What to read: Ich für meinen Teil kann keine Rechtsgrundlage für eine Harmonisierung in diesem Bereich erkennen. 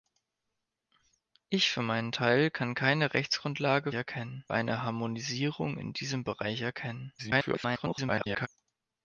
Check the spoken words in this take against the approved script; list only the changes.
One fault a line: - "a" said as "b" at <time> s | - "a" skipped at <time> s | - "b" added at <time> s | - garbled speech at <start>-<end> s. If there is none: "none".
- "für" said as "erkennen" at 3.9 s
- garbled speech at 7.2-8.5 s